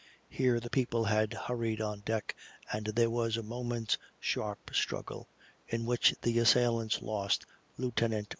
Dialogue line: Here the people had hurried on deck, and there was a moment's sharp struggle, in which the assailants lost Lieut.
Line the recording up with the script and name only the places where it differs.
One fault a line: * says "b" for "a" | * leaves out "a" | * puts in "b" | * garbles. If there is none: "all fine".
all fine